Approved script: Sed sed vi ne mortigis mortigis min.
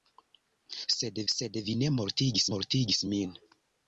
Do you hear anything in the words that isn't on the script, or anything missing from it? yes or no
no